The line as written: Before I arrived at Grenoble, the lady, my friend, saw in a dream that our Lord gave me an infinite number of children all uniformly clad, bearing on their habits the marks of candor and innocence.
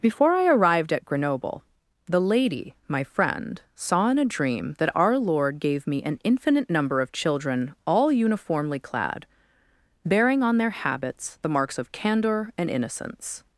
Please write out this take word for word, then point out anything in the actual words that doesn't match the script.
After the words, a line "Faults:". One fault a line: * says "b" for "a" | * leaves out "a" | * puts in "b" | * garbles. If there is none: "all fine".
Before I arrived at Grenoble, the lady, my friend, saw in a dream that our Lord gave me an infinite number of children all uniformly clad, bearing on their habits the marks of candor and innocence.
Faults:
all fine